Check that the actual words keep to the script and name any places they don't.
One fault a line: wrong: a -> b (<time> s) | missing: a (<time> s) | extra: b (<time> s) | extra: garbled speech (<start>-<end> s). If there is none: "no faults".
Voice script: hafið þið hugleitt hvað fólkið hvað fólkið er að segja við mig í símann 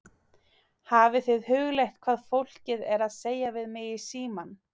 missing: hvað fólkið (2.8 s)